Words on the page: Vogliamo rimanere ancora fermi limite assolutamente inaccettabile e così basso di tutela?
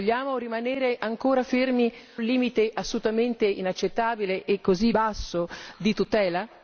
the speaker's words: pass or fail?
pass